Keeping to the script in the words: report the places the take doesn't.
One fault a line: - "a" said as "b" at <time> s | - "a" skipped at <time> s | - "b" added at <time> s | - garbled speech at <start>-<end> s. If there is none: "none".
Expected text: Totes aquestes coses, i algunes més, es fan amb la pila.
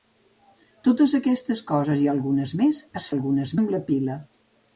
- "fan" said as "algunes" at 3.1 s